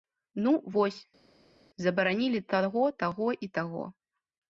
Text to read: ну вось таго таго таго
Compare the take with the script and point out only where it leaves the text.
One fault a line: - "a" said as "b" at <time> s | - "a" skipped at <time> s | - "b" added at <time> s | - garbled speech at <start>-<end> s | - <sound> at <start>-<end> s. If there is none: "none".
- "забаранілі" added at 1.9 s
- "і" added at 3.3 s